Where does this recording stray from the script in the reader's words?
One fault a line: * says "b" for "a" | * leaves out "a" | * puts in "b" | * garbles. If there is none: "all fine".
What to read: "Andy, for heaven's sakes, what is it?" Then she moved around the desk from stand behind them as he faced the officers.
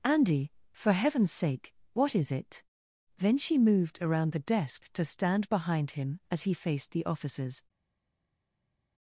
* says "sake" for "sakes"
* says "to" for "from"
* says "him" for "them"